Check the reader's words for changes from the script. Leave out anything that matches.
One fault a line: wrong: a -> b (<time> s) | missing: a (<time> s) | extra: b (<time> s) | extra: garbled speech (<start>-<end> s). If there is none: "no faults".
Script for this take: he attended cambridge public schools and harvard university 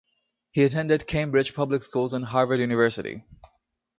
no faults